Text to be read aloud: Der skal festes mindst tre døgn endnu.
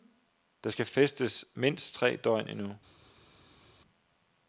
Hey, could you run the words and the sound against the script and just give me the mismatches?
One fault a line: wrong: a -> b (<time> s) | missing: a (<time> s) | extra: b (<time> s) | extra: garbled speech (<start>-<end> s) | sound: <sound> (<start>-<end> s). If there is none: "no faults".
no faults